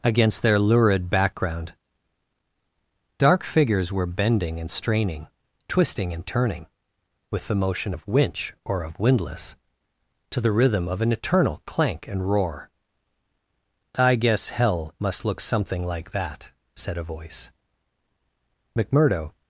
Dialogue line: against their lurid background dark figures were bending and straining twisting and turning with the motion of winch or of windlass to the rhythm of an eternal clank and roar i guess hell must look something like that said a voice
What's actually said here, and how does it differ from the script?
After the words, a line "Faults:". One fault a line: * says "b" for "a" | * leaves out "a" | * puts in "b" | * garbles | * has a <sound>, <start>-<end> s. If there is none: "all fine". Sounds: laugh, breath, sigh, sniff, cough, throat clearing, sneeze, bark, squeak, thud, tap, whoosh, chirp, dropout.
against their lurid background dark figures were bending and straining twisting and turning with the motion of winch or of windlass to the rhythm of an eternal clank and roar i guess hell must look something like that said a voice mcmurdo
Faults:
* puts in "mcmurdo"